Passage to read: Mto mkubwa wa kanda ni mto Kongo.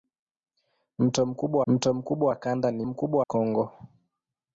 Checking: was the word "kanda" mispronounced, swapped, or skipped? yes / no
no